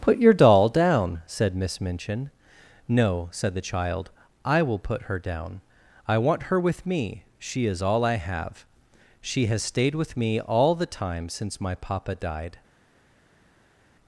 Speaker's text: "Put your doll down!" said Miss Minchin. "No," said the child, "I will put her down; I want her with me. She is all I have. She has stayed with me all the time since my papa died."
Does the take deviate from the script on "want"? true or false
false